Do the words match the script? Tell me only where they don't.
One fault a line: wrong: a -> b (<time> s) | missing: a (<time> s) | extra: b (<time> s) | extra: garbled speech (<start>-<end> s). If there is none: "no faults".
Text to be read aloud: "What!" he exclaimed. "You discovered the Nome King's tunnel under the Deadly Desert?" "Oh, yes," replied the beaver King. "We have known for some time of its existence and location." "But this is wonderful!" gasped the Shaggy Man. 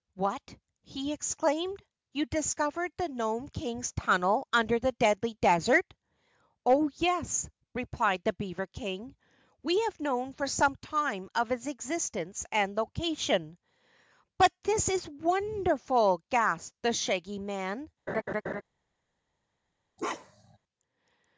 no faults